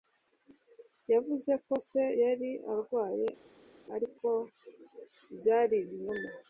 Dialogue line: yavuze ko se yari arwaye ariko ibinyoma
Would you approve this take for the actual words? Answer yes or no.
no